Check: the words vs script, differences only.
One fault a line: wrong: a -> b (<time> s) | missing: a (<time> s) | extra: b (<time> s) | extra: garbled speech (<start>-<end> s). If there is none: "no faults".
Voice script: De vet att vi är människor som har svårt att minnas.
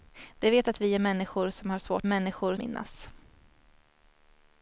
wrong: att -> människor (2.1 s)